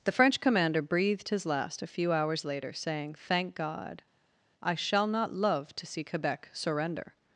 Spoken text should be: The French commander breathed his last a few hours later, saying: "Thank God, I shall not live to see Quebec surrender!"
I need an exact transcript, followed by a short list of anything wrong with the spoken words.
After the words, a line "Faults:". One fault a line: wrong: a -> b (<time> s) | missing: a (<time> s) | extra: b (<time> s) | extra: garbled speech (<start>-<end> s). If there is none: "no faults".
The French commander breathed his last a few hours later, saying: "Thank God, I shall not love to see Quebec surrender!"
Faults:
wrong: live -> love (5.3 s)